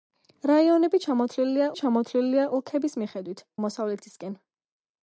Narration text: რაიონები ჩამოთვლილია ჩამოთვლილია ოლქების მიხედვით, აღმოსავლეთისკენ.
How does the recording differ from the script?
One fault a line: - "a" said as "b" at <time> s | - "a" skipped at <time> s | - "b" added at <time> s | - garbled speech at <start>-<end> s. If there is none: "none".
none